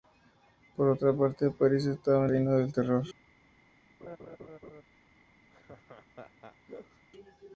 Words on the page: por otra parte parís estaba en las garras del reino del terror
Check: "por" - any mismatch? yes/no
no